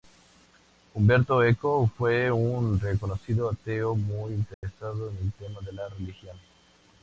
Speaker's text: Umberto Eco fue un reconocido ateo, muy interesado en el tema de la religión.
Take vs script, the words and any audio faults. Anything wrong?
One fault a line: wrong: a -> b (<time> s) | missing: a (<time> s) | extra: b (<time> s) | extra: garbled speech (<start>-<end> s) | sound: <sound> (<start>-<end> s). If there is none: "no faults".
sound: dropout (4.5-4.6 s)